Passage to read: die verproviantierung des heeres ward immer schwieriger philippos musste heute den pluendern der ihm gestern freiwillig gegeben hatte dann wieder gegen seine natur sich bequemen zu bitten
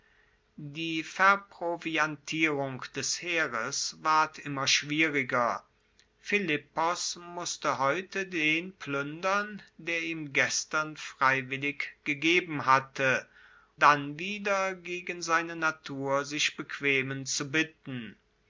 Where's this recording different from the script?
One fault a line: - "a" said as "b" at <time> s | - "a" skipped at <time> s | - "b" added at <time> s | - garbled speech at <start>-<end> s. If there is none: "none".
none